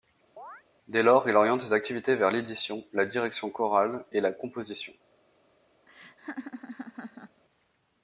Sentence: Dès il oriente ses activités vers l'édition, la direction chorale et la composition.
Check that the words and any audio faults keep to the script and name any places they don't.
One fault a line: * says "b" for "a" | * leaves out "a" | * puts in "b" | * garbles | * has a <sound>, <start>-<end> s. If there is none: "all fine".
* has a chirp, 0.4-0.6 s
* puts in "lors"
* has a laugh, 5.9-7.4 s